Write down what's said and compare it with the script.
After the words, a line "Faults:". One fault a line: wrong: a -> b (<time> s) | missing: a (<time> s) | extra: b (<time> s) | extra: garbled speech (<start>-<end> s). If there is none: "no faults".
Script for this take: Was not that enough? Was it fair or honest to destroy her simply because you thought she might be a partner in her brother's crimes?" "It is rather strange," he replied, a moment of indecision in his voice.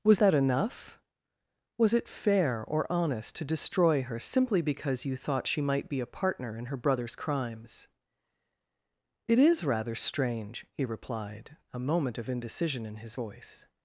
Was that enough? Was it fair or honest to destroy her simply because you thought she might be a partner in her brother's crimes?" "It is rather strange," he replied, a moment of indecision in his voice.
Faults:
missing: not (0.2 s)